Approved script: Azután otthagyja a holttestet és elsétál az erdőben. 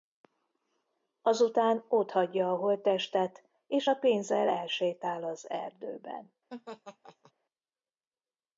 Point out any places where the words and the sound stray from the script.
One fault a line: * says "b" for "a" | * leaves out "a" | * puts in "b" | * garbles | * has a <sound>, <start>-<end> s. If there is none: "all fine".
* puts in "a pénzzel"
* has a laugh, 6.5-7.3 s